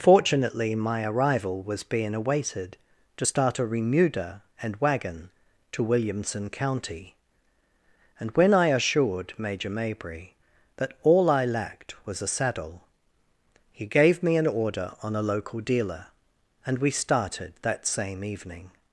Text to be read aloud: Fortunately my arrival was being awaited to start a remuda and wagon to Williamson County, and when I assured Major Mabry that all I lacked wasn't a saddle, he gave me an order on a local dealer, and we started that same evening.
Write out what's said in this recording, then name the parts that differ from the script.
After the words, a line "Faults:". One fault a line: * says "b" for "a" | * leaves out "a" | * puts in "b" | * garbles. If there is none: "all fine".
Fortunately my arrival was being awaited to start a remuda and wagon to Williamson County, and when I assured Major Mabry that all I lacked was a saddle, he gave me an order on a local dealer, and we started that same evening.
Faults:
* says "was" for "wasn't"